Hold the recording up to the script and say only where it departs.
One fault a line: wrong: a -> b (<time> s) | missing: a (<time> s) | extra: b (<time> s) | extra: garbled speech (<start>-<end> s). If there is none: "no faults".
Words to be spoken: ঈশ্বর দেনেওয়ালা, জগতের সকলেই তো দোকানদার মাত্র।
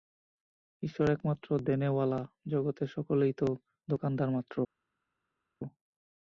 extra: একমাত্র (1.1 s)